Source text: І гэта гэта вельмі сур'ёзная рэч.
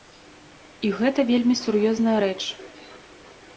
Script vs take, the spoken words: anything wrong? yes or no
yes